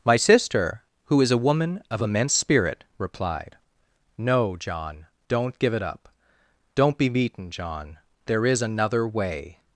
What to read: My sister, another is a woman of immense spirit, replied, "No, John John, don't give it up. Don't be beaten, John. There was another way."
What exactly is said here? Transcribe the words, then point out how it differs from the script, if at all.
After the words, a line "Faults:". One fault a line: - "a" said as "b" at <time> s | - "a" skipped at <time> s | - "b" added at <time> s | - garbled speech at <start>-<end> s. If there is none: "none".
My sister, who is a woman of immense spirit, replied, "No, John, don't give it up. Don't be beaten, John. There is another way."
Faults:
- "another" said as "who" at 1.1 s
- "John" skipped at 5.0 s
- "was" said as "is" at 8.4 s